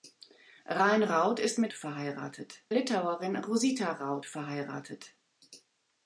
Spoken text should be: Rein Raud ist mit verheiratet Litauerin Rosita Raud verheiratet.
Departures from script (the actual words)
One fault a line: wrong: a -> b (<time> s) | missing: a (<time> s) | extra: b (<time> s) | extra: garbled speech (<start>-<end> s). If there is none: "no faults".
no faults